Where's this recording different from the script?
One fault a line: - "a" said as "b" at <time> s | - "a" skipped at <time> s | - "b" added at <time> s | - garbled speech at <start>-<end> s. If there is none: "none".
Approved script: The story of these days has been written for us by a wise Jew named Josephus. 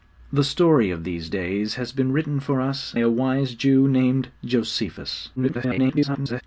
- "by" skipped at 2.9 s
- garbled speech at 5.4-6.4 s